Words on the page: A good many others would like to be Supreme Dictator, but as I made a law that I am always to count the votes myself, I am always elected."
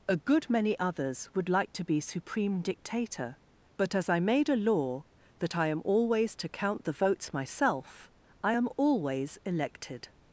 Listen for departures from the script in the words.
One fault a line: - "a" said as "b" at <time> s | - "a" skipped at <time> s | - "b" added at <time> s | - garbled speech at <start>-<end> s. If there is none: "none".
none